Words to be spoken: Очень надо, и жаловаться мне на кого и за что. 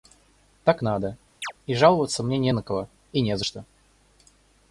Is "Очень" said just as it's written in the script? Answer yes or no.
no